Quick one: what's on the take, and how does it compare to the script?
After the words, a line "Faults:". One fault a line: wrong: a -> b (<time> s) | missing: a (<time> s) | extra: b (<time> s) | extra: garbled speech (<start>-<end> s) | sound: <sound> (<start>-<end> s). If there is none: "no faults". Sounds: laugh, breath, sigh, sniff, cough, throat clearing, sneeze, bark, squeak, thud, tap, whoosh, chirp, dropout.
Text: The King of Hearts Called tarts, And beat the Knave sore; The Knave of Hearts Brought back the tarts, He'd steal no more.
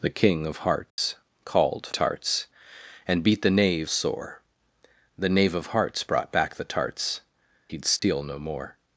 The King of Hearts Called tarts, And beat the Knave sore; The Knave of Hearts Brought back the tarts, He'd steal no more.
Faults:
sound: dropout (0.9-1.0 s)
sound: dropout (8.0-8.0 s)